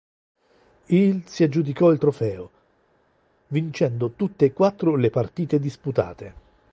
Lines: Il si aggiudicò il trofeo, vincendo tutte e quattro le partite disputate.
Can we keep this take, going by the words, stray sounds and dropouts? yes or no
yes